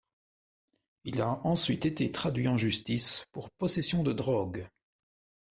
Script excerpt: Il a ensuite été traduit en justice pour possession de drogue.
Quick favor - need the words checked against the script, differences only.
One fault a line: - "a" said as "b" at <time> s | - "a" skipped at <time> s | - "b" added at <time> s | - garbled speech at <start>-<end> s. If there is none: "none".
none